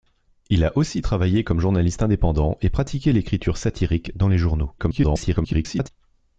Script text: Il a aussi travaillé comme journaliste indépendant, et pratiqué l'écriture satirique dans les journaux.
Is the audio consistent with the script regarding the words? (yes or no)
no